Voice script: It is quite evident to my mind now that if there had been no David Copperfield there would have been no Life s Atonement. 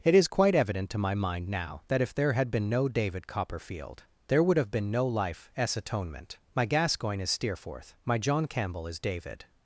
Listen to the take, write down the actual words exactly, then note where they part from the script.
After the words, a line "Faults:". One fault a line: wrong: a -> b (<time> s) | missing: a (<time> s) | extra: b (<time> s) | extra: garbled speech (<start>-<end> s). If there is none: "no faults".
It is quite evident to my mind now that if there had been no David Copperfield there would have been no Life s Atonement. My Gascoigne is Steerforth, my John Campbell is David
Faults:
extra: My Gascoigne is Steerforth my John Campbell is David (6.5 s)